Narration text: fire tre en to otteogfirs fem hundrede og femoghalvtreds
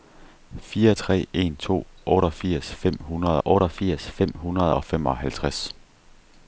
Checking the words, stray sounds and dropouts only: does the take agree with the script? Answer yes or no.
no